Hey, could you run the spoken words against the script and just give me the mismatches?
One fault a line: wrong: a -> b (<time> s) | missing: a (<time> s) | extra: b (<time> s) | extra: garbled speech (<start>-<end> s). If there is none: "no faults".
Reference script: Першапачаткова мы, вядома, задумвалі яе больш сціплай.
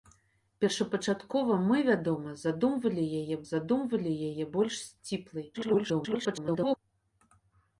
extra: задумвалі яе (3.5 s)
extra: garbled speech (5.5-6.8 s)